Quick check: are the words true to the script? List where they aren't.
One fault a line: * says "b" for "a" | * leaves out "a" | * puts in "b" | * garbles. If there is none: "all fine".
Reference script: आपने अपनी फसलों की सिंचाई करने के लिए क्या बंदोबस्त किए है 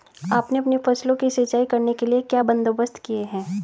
all fine